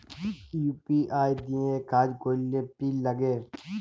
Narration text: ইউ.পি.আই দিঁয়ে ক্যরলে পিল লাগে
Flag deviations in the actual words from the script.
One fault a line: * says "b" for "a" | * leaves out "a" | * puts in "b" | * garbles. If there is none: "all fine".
* puts in "কাজ"